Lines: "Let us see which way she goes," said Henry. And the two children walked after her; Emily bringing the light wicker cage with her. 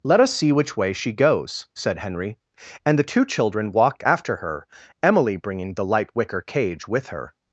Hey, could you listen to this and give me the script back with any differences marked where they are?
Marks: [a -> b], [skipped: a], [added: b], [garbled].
"Let us see which way she goes," said Henry. And the two children walked after her; Emily bringing the light wicker cage with her.